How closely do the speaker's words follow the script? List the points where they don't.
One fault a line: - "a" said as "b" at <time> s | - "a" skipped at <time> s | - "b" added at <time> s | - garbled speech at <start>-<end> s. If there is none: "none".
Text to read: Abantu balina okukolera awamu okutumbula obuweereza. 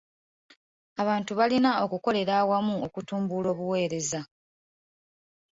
none